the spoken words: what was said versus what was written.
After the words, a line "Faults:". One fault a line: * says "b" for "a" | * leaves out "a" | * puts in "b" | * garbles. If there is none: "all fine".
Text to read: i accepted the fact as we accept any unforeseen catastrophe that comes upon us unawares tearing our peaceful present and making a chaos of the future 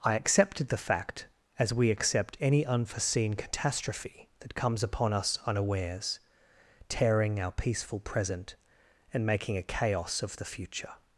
i accepted the fact as we accept any unforeseen catastrophe that comes upon us unawares tearing our peaceful present and making a chaos of the future
Faults:
all fine